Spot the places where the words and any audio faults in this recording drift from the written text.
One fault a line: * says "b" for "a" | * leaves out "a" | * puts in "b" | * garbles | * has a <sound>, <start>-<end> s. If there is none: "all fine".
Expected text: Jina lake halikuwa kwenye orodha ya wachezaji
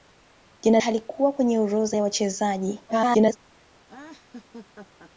* leaves out "lake"
* garbles
* has a laugh, 3.9-5.1 s